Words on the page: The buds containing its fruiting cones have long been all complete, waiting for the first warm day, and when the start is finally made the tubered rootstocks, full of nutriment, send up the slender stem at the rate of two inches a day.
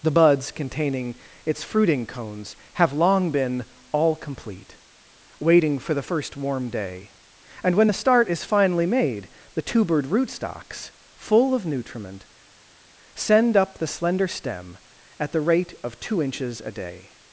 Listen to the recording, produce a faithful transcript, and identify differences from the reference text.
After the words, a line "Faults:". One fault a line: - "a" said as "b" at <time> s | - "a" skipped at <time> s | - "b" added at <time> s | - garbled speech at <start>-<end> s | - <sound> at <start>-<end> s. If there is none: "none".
The buds containing its fruiting cones have long been all complete, waiting for the first warm day, and when the start is finally made the tubered rootstocks, full of nutriment, send up the slender stem at the rate of two inches a day.
Faults:
none